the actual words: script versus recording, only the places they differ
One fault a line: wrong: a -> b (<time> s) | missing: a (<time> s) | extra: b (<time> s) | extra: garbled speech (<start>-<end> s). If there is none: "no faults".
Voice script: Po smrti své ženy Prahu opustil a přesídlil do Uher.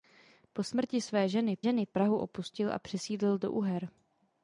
extra: ženy (1.6 s)